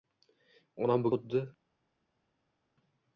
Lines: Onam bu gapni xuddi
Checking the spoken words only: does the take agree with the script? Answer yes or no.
no